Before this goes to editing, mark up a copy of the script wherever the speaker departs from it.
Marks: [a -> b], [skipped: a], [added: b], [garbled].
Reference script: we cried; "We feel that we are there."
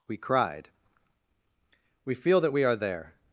we cried; "We feel that we are there."